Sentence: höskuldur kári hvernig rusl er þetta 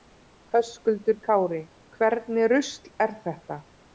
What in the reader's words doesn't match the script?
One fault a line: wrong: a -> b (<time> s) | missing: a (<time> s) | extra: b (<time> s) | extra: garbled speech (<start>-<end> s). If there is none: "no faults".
no faults